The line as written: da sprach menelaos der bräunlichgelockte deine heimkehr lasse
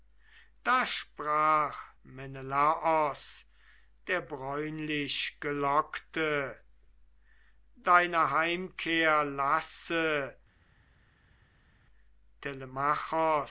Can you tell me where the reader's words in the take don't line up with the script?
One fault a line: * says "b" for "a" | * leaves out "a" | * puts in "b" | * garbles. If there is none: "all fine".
all fine